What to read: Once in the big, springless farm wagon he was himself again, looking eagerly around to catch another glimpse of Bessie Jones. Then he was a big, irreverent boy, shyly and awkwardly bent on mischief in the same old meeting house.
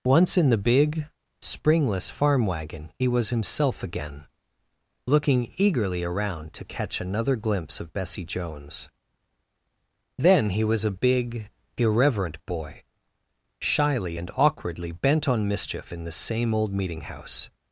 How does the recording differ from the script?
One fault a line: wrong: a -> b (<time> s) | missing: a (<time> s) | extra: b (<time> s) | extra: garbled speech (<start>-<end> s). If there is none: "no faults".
no faults